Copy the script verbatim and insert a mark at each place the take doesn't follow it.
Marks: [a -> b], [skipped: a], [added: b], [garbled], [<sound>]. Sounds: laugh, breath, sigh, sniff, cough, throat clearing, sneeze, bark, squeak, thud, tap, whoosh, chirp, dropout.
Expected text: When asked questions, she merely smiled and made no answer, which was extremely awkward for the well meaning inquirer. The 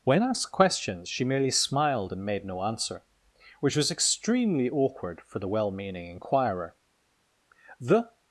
When asked questions, she merely smiled and made no answer, which was extremely awkward for the well meaning inquirer. The